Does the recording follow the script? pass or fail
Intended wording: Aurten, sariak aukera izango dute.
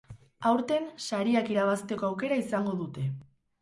fail